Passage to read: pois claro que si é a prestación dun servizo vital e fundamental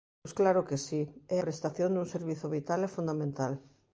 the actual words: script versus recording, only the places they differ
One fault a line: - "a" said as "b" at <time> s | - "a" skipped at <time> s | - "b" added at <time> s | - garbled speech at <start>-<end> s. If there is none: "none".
- "a" skipped at 1.4 s